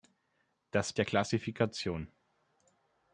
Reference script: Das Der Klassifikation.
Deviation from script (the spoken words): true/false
false